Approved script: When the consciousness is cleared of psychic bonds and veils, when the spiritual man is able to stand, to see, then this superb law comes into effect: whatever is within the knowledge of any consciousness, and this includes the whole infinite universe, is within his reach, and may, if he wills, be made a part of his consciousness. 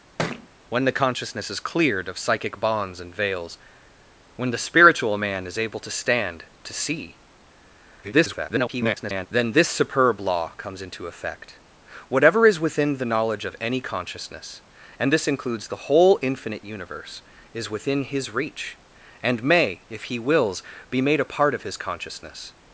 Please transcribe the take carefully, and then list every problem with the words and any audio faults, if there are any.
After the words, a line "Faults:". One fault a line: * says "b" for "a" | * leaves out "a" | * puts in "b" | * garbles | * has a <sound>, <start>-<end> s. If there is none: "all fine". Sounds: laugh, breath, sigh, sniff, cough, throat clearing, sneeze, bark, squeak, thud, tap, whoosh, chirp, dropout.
When the consciousness is cleared of psychic bonds and veils, when the spiritual man is able to stand, to see, [garbled] then this superb law comes into effect: whatever is within the knowledge of any consciousness, and this includes the whole infinite universe, is within his reach, and may, if he wills, be made a part of his consciousness.
Faults:
* has a thud, 0.2-0.5 s
* garbles